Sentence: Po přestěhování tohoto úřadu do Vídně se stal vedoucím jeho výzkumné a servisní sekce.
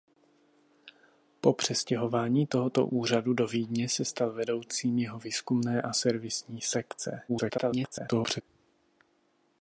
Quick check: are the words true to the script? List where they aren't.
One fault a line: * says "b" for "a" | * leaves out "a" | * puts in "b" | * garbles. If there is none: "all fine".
* garbles